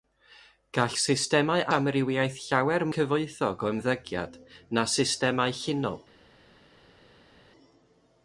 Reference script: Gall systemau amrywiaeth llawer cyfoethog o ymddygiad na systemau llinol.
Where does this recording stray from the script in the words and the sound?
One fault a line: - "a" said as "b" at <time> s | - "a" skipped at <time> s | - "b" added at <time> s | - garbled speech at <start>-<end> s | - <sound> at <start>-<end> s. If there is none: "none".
none